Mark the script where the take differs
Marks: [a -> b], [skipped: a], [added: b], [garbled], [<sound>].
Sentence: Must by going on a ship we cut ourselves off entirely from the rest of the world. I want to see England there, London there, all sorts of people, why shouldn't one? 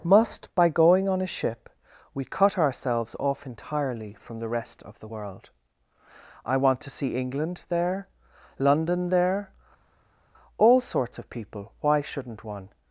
Must by going on a ship we cut ourselves off entirely from the rest of the world. I want to see England there, London there, all sorts of people, why shouldn't one?